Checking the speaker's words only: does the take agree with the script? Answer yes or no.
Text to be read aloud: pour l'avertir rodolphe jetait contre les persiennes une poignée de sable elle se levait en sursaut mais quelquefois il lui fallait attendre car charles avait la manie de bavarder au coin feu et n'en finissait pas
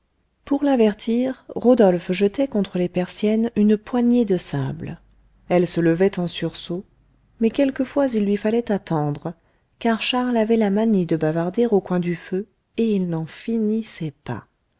no